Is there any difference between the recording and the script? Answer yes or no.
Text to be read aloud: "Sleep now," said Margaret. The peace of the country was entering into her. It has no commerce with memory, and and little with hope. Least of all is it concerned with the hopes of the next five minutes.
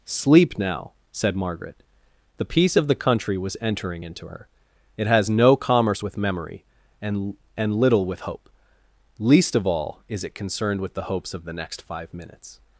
no